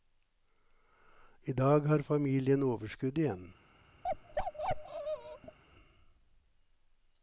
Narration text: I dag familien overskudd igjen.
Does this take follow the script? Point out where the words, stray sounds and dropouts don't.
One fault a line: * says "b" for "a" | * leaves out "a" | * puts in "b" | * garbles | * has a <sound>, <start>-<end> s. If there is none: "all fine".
* puts in "har"
* has a bark, 4.0-5.6 s